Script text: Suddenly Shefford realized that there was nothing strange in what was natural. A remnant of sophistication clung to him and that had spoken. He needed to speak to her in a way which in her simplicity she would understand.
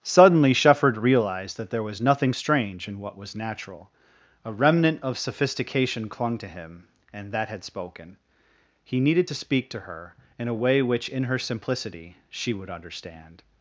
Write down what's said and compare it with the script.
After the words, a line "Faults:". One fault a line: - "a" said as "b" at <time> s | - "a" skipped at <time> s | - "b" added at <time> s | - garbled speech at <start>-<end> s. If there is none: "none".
Suddenly Shefford realized that there was nothing strange in what was natural. A remnant of sophistication clung to him and that had spoken. He needed to speak to her in a way which in her simplicity she would understand.
Faults:
none